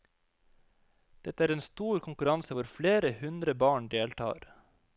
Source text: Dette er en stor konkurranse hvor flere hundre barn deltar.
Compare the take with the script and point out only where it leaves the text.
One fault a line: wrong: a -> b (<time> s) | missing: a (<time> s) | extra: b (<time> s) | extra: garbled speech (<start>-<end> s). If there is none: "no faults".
no faults